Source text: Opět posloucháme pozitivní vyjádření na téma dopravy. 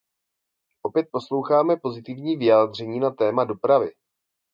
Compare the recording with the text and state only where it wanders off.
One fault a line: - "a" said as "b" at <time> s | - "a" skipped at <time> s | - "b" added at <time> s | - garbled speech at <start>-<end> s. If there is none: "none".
none